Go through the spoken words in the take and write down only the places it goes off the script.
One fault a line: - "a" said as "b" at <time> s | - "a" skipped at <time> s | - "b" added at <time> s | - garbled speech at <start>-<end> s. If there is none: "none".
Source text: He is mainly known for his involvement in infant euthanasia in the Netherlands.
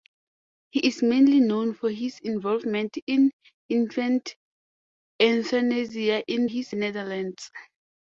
- "the" said as "his" at 6.4 s